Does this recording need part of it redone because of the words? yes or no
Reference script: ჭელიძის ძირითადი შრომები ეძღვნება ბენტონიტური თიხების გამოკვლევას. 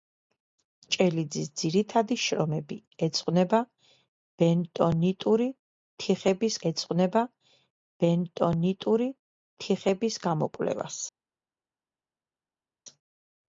yes